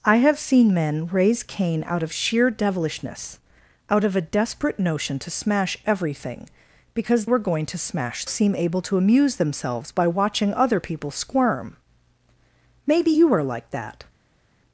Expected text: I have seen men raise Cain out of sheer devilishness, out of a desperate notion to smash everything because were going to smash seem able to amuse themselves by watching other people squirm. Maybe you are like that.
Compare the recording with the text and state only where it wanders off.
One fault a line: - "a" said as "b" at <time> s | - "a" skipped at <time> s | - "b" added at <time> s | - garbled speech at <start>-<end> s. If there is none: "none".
none